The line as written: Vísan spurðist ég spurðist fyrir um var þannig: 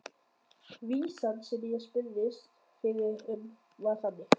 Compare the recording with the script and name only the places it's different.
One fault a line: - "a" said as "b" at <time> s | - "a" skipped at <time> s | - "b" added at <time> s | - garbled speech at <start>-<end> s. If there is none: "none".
- "spurðist" said as "sem" at 1.5 s